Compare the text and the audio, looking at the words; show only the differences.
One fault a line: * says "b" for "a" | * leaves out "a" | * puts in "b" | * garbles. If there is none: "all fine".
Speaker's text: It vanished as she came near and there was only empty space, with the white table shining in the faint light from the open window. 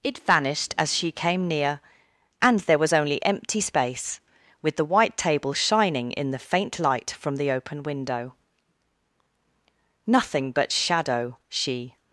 * puts in "Nothing but shadow she"